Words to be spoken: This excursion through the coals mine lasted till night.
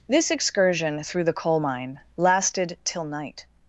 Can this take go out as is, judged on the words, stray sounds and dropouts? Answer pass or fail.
fail